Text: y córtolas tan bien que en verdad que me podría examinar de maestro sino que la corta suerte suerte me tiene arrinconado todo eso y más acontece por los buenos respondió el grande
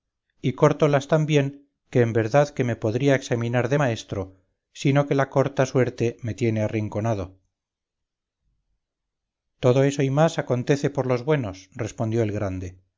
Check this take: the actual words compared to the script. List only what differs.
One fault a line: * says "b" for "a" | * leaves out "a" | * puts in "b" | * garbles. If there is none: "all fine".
* leaves out "suerte"